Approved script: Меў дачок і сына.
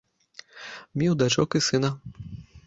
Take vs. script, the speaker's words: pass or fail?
pass